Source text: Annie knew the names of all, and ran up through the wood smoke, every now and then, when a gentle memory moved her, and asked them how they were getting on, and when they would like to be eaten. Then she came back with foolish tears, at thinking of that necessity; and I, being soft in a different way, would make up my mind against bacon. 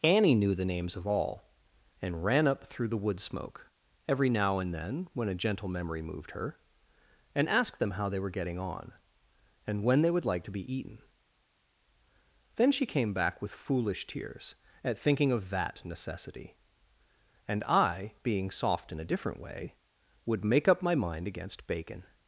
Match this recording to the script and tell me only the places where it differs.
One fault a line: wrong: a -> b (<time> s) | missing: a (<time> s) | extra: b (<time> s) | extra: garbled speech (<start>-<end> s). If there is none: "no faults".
no faults